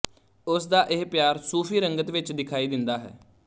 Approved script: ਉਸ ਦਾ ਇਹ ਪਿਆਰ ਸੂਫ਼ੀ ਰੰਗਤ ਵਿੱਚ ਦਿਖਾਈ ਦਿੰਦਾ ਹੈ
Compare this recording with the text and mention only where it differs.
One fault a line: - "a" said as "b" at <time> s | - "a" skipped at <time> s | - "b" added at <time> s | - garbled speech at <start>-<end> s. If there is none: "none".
none